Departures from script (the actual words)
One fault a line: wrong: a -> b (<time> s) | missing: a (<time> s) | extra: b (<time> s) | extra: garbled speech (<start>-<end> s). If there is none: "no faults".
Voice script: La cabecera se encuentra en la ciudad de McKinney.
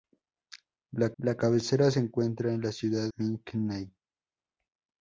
extra: la (1.2 s)
missing: de (3.1 s)